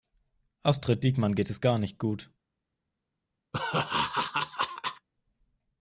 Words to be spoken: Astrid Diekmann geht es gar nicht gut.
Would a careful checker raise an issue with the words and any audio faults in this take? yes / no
yes